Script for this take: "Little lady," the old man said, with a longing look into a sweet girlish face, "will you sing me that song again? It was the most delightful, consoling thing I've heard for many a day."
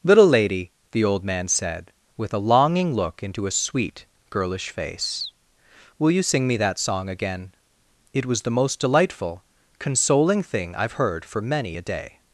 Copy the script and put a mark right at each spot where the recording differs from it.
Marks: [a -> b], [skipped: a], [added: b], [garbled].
"Little lady," the old man said, with a longing look into a sweet girlish face, "will you sing me that song again? It was the most delightful, consoling thing I've heard for many a day."